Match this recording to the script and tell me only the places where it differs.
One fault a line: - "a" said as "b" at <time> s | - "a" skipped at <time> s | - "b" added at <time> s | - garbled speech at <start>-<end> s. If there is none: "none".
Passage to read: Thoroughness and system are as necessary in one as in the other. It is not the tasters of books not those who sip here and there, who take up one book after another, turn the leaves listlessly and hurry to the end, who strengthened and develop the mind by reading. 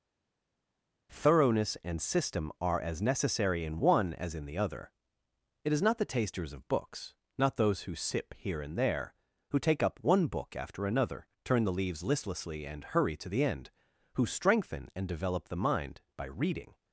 - "strengthened" said as "strengthen" at 14.2 s